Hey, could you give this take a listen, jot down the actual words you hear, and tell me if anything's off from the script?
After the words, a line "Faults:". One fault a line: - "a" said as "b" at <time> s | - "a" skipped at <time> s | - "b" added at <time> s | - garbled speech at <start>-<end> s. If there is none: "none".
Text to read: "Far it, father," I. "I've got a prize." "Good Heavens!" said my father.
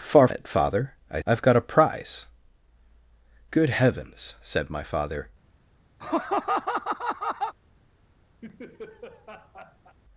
"Far it, father," I. "I've got a prize." "Good Heavens!" said my father.
Faults:
none